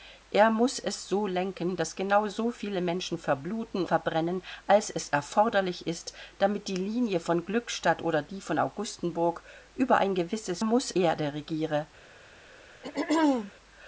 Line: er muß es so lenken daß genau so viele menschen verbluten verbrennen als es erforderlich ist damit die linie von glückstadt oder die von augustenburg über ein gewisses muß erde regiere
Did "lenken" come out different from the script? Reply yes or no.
no